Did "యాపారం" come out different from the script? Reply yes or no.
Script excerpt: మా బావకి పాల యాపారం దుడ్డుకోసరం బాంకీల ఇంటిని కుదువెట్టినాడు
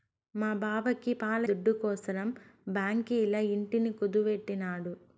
yes